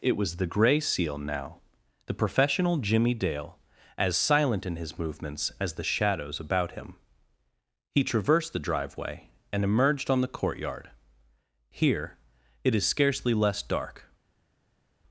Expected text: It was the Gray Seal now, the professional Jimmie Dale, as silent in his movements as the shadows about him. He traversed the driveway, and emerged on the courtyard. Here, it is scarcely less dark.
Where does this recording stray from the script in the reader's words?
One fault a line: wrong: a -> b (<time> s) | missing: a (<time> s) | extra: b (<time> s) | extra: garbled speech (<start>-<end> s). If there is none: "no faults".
no faults